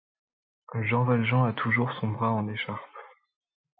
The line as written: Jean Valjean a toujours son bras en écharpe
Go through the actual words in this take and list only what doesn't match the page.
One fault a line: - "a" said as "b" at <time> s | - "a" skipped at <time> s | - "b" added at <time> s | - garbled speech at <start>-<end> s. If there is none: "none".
none